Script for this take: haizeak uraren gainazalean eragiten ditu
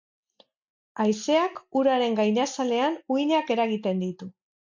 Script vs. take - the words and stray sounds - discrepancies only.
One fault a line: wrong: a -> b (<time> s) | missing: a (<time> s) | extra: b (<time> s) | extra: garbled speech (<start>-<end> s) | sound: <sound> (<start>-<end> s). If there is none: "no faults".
extra: uhinak (3.2 s)